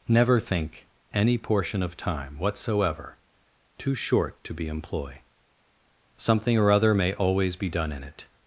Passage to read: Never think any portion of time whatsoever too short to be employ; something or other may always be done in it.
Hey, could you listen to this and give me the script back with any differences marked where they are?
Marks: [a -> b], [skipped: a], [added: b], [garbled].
Never think any portion of time whatsoever too short to be employ; something or other may always be done in it.